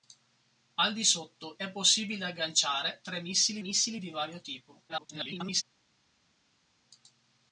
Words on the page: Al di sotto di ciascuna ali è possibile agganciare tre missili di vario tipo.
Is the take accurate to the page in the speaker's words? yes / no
no